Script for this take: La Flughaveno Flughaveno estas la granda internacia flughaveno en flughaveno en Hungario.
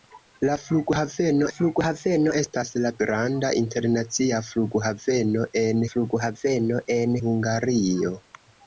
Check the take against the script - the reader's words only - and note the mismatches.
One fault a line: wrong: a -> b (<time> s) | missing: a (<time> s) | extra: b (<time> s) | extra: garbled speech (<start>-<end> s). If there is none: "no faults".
no faults